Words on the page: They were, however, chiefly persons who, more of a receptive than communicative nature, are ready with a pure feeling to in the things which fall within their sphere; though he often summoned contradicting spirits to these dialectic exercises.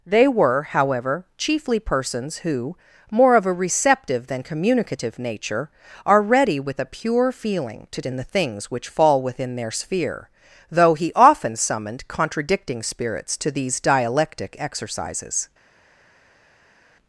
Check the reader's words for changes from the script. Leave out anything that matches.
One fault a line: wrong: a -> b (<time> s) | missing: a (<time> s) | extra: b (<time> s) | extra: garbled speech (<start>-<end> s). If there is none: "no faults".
no faults